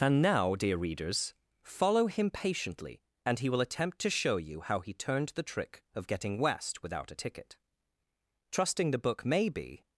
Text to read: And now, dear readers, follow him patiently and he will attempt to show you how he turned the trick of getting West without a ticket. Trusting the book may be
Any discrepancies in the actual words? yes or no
no